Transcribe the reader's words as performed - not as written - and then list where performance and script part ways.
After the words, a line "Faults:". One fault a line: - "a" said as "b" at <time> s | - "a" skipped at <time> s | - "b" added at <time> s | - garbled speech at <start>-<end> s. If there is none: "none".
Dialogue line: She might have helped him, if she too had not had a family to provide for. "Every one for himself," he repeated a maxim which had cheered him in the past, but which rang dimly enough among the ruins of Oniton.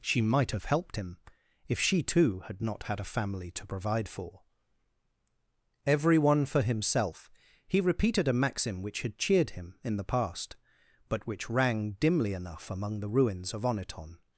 She might have helped him, if she too had not had a family to provide for. "Every one for himself," he repeated a maxim which had cheered him in the past, but which rang dimly enough among the ruins of Oniton.
Faults:
none